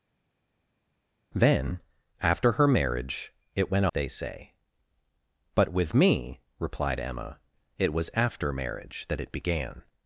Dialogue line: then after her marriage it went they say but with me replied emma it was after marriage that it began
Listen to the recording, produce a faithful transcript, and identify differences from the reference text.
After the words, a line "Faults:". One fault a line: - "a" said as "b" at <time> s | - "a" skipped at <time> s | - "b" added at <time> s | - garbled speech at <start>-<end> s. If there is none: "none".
then after her marriage it went they say but with me replied emma it was after marriage that it began
Faults:
none